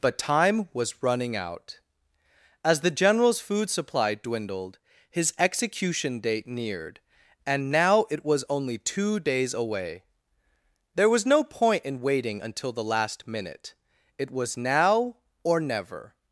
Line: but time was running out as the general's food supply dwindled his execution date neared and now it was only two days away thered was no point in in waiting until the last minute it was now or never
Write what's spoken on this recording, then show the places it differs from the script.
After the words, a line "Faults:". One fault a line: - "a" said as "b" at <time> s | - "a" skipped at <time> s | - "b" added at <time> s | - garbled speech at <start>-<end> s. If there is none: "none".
but time was running out as the general's food supply dwindled his execution date neared and now it was only two days away there was no point in waiting until the last minute it was now or never
Faults:
- "thered" said as "there" at 10.9 s
- "in" skipped at 12.0 s